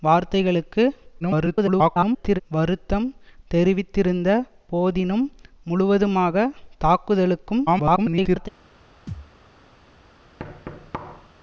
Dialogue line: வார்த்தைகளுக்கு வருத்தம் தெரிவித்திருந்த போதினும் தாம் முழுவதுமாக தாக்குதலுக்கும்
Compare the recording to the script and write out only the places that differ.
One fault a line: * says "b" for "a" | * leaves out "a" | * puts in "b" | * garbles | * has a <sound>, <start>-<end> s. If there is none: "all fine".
* garbles
* leaves out "தாம்"
* garbles
* has a thud, 9.1-9.3 s
* has a thud, 10.4-11.3 s